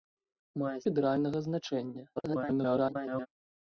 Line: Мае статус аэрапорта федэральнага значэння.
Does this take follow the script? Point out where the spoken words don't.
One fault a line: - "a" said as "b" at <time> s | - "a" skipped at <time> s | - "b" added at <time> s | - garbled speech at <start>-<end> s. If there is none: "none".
- "статус аэрапорта" skipped at 0.8 s
- garbled speech at 2.2-3.3 s